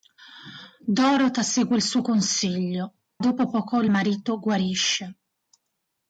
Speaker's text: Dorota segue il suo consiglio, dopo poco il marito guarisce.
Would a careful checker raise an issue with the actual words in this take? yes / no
no